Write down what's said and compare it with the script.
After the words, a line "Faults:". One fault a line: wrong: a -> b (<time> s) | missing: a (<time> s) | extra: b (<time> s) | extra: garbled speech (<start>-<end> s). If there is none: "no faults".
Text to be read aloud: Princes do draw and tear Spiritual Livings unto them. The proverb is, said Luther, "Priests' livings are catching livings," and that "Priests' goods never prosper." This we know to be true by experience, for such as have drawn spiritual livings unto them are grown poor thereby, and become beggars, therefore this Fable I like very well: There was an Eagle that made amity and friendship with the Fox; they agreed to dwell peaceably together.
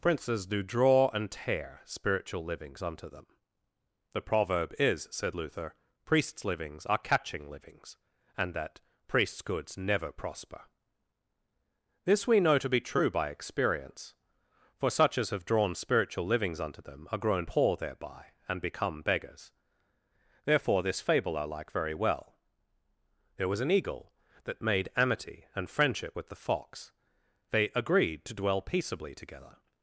Princes do draw and tear Spiritual Livings unto them. The proverb is, said Luther, "Priests' livings are catching livings," and that "Priests' goods never prosper." This we know to be true by experience, for such as have drawn spiritual livings unto them are grown poor thereby, and become beggars, therefore this Fable I like very well: There was an Eagle that made amity and friendship with the Fox; they agreed to dwell peaceably together.
Faults:
no faults